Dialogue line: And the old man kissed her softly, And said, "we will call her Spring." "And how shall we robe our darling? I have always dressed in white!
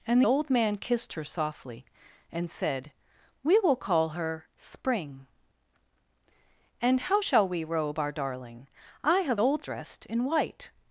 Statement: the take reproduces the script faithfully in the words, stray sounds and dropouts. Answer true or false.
false